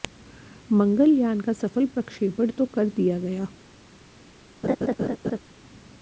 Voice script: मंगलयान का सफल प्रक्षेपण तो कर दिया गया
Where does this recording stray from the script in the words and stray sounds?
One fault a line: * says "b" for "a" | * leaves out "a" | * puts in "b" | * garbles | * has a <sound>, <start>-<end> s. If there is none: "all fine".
* has a laugh, 4.6-5.4 s